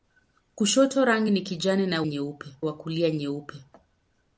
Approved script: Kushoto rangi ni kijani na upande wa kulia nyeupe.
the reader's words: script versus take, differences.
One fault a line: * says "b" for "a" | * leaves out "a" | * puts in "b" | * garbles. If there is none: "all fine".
* says "nyeupe" for "upande"